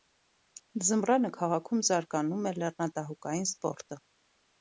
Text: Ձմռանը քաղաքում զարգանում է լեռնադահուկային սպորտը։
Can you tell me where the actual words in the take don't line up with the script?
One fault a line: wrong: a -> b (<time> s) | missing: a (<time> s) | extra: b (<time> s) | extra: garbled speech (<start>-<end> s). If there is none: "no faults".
no faults